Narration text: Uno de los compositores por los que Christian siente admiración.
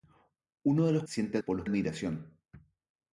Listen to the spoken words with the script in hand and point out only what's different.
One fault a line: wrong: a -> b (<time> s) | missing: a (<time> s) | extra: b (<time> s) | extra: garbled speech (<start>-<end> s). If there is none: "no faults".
wrong: compositores -> siente (1.1 s)
missing: que Christian siente (1.7 s)